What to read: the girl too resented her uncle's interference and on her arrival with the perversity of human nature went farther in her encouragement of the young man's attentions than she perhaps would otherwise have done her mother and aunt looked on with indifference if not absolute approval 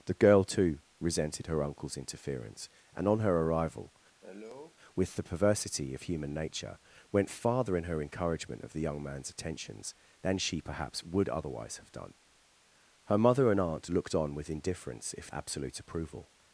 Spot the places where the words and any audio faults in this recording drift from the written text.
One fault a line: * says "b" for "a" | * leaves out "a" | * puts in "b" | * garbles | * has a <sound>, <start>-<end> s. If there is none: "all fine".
* has a cough, 4.2-4.8 s
* leaves out "not"